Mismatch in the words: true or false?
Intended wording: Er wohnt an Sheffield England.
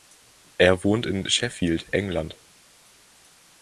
true